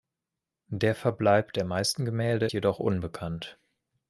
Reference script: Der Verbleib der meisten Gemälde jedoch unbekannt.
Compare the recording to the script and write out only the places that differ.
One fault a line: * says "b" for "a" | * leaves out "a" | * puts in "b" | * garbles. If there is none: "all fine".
all fine